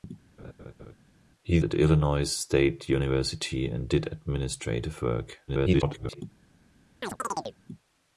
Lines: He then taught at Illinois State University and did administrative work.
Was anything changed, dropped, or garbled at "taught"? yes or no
yes